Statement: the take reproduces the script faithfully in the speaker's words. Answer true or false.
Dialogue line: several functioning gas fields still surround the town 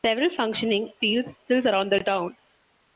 false